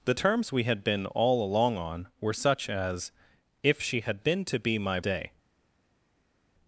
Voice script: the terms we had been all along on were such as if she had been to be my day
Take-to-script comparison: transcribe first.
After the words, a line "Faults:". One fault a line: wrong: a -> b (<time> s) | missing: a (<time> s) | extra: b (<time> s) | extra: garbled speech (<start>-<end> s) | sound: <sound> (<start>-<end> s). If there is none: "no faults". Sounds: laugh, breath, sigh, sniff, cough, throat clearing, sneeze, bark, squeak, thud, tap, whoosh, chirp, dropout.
the terms we had been all along on were such as if she had been to be my day
Faults:
no faults